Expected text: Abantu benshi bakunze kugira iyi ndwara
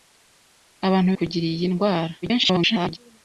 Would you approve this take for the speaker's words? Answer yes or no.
no